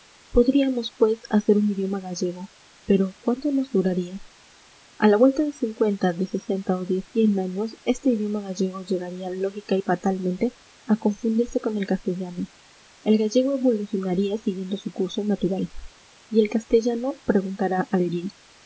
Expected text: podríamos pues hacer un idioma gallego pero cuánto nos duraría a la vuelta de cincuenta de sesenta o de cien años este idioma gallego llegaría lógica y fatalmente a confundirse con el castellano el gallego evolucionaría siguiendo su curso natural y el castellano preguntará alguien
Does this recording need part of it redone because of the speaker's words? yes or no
no